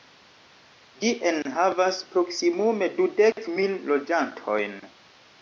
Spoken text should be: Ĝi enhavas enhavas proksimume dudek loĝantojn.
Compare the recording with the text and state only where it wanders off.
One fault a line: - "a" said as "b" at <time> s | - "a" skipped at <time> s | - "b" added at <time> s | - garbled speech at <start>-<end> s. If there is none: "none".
- "enhavas" skipped at 2.0 s
- "mil" added at 3.6 s